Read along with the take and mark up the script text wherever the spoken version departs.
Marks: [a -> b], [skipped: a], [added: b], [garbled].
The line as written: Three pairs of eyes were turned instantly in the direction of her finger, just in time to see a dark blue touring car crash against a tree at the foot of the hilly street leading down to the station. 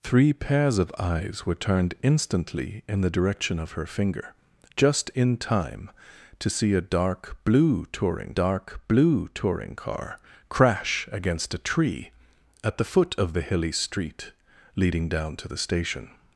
Three pairs of eyes were turned instantly in the direction of her finger, just in time to see a dark blue touring [added: dark blue touring] car crash against a tree at the foot of the hilly street leading down to the station.